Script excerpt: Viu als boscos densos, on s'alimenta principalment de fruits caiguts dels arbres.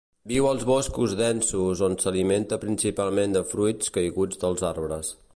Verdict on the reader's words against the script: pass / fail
pass